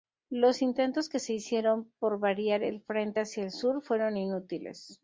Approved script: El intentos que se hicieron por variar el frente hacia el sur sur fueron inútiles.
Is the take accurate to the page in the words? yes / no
no